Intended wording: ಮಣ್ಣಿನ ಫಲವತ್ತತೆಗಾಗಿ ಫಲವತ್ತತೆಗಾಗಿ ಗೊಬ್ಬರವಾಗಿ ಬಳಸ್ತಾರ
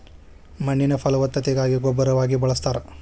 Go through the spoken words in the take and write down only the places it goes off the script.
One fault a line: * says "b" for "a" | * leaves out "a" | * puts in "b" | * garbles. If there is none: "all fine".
* leaves out "ಫಲವತ್ತತೆಗಾಗಿ"